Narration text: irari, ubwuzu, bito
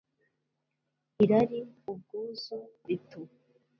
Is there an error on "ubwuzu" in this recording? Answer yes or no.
no